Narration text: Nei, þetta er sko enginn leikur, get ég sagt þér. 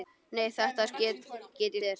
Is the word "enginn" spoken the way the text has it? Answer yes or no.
no